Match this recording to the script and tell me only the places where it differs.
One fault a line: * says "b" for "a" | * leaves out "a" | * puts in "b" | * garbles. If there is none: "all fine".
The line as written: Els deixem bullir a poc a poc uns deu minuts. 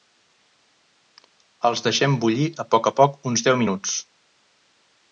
all fine